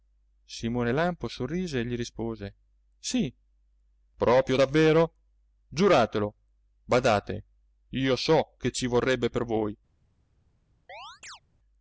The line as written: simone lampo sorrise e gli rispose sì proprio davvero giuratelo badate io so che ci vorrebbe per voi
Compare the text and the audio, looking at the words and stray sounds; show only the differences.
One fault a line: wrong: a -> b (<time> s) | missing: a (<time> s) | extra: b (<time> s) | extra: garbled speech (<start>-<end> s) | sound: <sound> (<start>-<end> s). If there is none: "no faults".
sound: chirp (10.9-11.4 s)